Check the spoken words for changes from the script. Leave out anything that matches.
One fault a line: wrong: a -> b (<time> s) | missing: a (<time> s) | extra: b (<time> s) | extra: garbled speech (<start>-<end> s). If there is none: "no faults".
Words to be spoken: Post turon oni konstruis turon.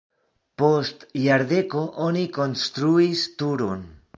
wrong: turon -> jardeko (1.2 s)